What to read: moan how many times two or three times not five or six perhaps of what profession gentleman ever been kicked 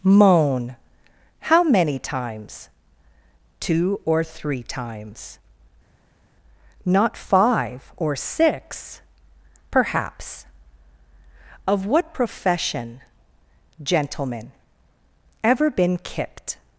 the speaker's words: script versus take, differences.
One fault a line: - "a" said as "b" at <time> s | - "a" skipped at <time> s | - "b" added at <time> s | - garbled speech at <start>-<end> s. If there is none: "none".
none